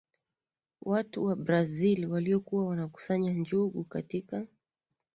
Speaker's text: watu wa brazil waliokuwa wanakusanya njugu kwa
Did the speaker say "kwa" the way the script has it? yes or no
no